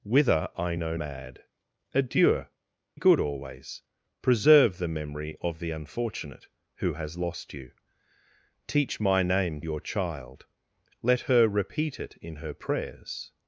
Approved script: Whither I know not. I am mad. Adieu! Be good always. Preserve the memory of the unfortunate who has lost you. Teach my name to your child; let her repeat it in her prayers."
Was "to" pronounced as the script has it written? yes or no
no